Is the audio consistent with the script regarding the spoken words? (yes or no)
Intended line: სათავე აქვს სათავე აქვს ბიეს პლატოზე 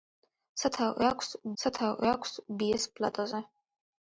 yes